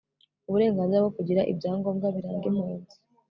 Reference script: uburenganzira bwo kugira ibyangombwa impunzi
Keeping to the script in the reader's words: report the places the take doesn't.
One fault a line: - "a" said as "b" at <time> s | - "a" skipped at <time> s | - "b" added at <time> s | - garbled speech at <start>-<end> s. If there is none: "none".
- "biranga" added at 2.2 s